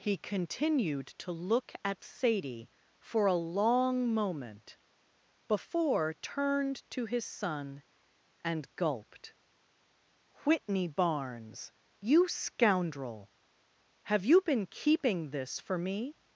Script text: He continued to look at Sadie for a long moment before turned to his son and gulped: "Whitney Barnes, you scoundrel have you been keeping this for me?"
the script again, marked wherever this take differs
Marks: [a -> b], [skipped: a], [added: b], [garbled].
He continued to look at Sadie for a long moment before turned to his son and gulped: "Whitney Barnes, you scoundrel have you been keeping this for me?"